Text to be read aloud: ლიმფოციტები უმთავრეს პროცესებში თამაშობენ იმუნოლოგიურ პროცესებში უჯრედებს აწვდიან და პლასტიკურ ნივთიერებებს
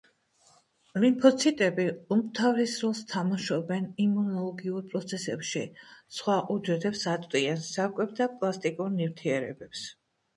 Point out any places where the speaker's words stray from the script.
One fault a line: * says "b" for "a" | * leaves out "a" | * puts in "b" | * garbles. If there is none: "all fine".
* says "როლს" for "პროცესებში"
* puts in "სხვა"
* puts in "საკვებ"